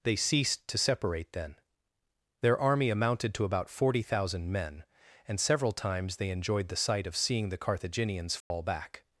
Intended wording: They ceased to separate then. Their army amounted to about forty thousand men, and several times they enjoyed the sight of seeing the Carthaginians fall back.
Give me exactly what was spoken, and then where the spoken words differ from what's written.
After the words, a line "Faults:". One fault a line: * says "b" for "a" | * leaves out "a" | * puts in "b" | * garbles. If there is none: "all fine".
They ceased to separate then. Their army amounted to about forty thousand men, and several times they enjoyed the sight of seeing the Carthaginians fall back.
Faults:
all fine